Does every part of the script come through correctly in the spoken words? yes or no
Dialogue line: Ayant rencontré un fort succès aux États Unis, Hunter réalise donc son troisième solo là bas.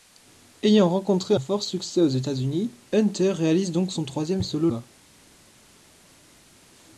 no